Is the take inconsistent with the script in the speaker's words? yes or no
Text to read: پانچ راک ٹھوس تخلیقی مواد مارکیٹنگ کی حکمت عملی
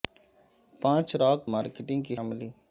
yes